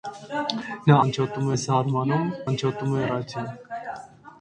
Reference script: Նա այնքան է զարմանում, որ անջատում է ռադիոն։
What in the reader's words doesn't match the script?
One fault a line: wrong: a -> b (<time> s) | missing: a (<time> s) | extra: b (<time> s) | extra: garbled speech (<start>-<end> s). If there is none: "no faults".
wrong: այնքան -> անջատում (1.0 s)
missing: որ (2.3 s)